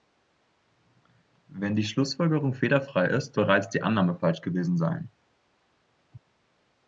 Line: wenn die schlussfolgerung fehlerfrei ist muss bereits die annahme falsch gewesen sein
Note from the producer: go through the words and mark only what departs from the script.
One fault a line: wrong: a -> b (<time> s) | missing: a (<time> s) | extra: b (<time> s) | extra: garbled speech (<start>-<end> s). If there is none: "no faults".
missing: muss (3.4 s)